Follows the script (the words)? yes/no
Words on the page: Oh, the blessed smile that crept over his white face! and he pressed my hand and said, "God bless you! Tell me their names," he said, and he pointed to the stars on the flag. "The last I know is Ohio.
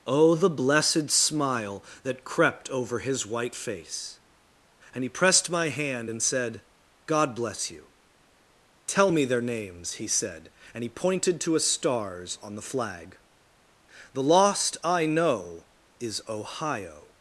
no